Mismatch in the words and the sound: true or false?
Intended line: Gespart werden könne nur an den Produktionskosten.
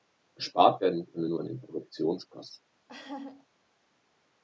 true